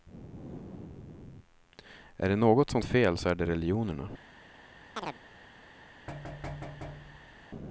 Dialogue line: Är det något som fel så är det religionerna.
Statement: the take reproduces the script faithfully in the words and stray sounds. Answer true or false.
false